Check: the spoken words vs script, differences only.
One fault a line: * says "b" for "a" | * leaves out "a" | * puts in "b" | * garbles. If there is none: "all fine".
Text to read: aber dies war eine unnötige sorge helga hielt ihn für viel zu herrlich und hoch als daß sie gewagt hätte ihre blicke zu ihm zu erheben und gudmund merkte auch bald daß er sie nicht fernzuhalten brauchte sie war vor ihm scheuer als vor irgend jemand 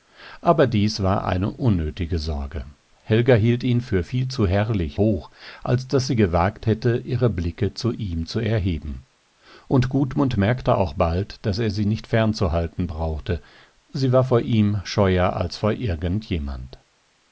* leaves out "und"